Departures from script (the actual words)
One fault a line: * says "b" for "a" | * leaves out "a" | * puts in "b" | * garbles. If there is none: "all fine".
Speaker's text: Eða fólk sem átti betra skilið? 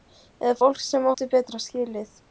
all fine